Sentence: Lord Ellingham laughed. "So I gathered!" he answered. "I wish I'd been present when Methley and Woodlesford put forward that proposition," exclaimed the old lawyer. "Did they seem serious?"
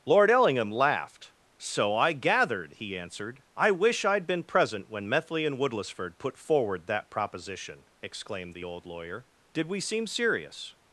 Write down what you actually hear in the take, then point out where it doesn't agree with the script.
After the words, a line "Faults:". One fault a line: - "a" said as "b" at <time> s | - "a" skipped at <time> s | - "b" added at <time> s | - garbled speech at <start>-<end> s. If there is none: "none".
Lord Ellingham laughed. "So I gathered!" he answered. "I wish I'd been present when Methley and Woodlesford put forward that proposition," exclaimed the old lawyer. "Did we seem serious?"
Faults:
- "they" said as "we" at 9.7 s